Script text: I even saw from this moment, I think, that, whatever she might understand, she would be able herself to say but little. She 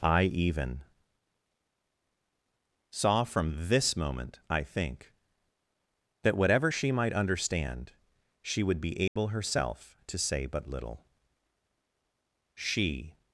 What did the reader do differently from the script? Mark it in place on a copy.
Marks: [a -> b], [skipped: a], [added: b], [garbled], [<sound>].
I even saw from this moment, I think, that, whatever she might understand, she would be able [dropout] herself to say but little. She